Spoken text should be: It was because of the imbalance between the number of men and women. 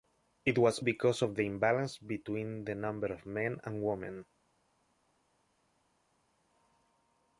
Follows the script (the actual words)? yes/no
yes